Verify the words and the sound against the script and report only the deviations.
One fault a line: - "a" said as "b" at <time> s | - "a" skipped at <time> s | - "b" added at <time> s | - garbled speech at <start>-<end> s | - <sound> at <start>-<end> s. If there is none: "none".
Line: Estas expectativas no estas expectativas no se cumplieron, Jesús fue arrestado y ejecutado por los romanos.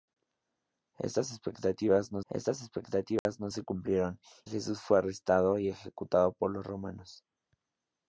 - dropout at 3.2-3.3 s